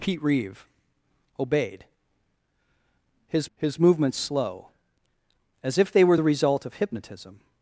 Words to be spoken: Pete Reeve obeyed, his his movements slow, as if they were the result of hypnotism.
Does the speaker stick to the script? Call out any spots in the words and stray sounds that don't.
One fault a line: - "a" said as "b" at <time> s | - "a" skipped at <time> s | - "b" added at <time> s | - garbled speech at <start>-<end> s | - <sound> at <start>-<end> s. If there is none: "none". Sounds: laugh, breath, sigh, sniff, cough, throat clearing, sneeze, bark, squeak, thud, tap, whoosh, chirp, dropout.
none